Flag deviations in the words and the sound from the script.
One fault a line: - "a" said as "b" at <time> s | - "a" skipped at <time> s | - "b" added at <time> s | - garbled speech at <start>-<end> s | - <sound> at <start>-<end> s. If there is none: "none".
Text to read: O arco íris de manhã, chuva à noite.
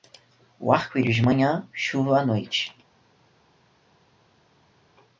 none